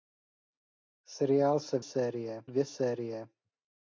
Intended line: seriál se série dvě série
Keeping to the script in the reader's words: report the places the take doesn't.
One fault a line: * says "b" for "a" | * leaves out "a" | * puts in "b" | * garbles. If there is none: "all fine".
all fine